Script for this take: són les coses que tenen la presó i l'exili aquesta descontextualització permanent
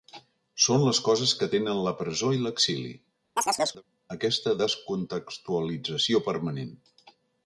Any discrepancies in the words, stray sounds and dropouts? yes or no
yes